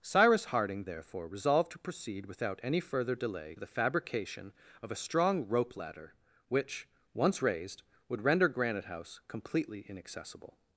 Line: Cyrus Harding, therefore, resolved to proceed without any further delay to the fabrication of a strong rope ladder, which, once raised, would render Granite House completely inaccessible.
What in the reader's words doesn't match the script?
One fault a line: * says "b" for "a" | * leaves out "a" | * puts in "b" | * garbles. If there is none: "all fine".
* leaves out "to"